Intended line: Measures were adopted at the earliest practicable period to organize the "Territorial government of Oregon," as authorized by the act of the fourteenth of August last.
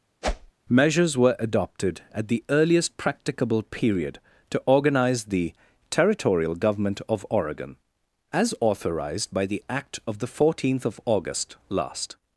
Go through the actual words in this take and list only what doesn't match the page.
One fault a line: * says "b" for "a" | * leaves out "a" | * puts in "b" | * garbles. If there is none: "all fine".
all fine